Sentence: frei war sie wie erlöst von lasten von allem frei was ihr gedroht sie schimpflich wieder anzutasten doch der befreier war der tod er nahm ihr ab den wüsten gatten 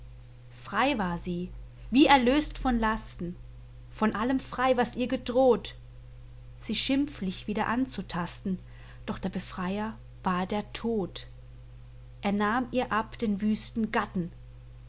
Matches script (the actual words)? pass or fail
pass